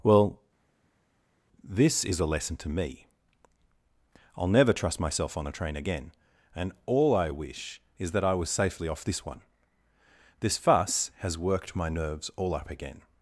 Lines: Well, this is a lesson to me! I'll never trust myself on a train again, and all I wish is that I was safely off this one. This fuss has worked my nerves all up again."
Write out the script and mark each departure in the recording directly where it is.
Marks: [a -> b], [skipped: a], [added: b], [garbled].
Well, this is a lesson to me! I'll never trust myself on a train again, and all I wish is that I was safely off this one. This fuss has worked my nerves all up again."